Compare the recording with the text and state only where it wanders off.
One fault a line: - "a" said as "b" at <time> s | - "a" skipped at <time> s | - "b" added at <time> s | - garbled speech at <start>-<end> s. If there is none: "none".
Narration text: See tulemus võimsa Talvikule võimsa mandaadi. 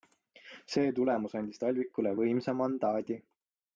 - "võimsa" said as "andis" at 1.4 s